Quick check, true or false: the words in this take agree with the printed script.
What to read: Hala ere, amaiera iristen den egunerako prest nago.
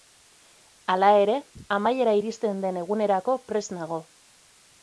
true